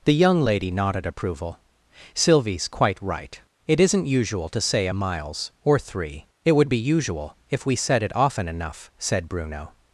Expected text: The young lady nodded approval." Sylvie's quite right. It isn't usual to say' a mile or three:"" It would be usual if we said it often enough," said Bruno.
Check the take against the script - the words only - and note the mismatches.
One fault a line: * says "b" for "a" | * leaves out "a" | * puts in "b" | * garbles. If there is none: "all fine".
* says "miles" for "mile"